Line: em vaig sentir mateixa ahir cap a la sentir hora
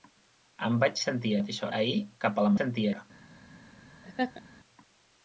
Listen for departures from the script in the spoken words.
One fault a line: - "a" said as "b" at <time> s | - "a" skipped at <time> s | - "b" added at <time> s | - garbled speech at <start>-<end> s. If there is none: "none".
none